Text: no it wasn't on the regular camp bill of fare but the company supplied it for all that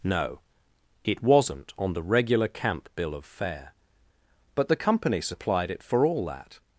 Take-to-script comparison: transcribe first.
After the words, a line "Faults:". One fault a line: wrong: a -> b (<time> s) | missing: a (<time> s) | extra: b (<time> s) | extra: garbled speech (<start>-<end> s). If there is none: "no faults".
no it wasn't on the regular camp bill of fare but the company supplied it for all that
Faults:
no faults